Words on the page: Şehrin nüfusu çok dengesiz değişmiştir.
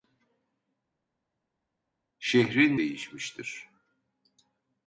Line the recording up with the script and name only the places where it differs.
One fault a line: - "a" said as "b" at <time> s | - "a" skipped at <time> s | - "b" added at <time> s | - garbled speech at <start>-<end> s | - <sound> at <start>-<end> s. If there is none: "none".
- "nüfusu çok dengesiz" skipped at 2.8 s